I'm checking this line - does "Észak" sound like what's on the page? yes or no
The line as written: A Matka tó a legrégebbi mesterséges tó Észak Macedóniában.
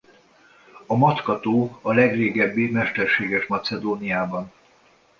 no